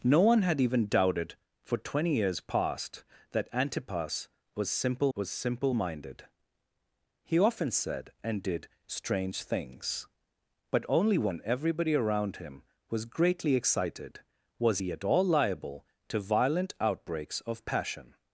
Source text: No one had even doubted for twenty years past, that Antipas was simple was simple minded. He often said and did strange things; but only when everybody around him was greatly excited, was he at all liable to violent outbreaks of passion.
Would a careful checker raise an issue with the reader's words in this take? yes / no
no